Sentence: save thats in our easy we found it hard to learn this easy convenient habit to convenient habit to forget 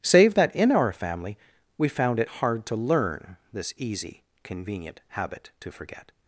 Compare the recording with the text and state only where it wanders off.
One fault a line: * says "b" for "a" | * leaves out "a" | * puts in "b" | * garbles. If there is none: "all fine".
* says "that" for "thats"
* says "family" for "easy"
* leaves out "convenient habit to"